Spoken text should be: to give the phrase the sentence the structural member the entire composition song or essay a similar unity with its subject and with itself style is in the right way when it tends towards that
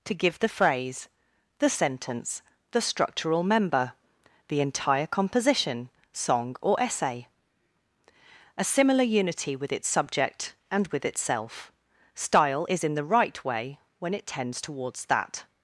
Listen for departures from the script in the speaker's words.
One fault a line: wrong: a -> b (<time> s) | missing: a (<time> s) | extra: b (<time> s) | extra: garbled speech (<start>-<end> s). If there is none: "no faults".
no faults